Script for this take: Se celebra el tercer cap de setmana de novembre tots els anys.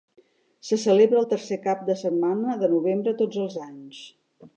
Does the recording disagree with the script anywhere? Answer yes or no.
no